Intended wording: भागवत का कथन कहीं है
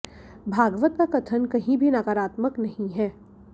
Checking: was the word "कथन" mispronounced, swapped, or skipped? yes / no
no